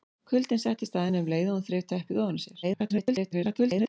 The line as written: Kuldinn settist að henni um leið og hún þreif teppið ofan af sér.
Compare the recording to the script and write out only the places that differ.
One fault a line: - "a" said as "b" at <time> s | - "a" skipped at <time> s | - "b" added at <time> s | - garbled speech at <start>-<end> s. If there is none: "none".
- garbled speech at 2.6-3.9 s